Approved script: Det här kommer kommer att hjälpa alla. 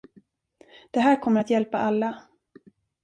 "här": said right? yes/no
yes